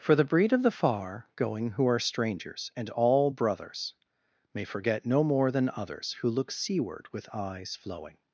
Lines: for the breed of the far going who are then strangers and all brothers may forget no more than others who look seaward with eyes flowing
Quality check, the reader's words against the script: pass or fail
fail